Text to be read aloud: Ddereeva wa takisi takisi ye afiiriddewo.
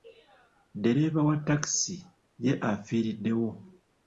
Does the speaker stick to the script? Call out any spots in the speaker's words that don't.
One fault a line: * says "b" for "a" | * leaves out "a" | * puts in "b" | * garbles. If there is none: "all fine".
* leaves out "takisi"